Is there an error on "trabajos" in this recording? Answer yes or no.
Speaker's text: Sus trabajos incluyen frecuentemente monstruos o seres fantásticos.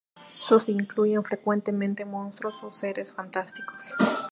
yes